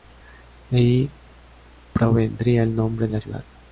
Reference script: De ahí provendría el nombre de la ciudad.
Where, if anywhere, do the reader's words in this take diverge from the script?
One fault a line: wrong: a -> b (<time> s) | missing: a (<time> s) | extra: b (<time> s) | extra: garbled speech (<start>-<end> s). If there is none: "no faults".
missing: de (3.1 s)